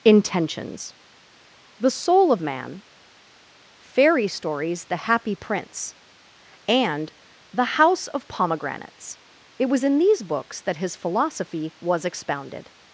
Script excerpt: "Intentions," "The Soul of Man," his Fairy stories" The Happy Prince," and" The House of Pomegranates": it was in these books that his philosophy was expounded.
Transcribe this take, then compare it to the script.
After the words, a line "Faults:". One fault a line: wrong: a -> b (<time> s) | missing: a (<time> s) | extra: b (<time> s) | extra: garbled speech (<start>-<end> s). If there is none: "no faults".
"Intentions," "The Soul of Man," Fairy stories" The Happy Prince," and" The House of Pomegranates": it was in these books that his philosophy was expounded.
Faults:
missing: his (2.8 s)